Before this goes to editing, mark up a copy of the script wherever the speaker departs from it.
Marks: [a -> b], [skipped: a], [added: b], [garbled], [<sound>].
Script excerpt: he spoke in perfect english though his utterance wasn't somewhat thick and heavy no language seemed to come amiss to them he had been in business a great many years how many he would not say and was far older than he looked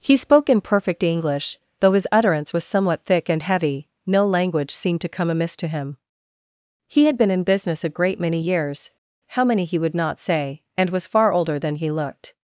he spoke in perfect english though his utterance [wasn't -> was] somewhat thick and heavy no language seemed to come amiss to [them -> him] he had been in business a great many years how many he would not say and was far older than he looked